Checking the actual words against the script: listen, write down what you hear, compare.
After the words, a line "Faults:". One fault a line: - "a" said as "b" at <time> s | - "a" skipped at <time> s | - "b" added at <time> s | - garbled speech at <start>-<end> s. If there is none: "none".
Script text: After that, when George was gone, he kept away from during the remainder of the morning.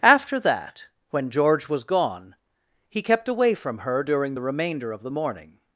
After that, when George was gone, he kept away from her during the remainder of the morning.
Faults:
- "her" added at 3.8 s